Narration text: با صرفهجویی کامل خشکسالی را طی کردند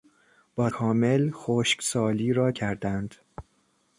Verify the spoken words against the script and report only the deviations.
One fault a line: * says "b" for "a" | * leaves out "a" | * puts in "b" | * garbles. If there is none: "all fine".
* leaves out "صرفهجویی"
* leaves out "طی"